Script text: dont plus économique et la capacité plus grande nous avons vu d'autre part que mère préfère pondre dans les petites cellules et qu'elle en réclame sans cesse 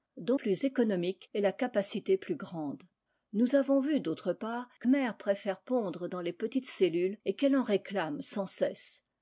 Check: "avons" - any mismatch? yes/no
no